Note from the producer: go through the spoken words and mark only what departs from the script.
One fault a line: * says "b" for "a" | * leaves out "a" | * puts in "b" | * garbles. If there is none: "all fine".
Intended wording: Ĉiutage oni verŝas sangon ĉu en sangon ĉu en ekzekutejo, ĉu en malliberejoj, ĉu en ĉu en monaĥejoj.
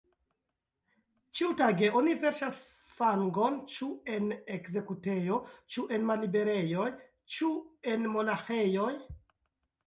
* leaves out "sangon ĉu en"
* leaves out "ĉu en"